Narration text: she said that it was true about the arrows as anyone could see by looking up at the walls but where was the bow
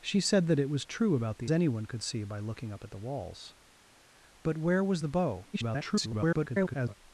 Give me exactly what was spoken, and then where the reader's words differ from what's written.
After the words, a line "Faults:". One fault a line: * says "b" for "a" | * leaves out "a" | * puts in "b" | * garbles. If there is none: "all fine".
she said that it was true about the anyone could see by looking up at the walls but where was the bow [garbled]
Faults:
* leaves out "arrows as"
* garbles